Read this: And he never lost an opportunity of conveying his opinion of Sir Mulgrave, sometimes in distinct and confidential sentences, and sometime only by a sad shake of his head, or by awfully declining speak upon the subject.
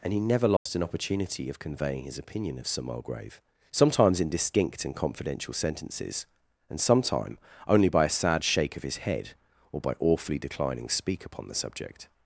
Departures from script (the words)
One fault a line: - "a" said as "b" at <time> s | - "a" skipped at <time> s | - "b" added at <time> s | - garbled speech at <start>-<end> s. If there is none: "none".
none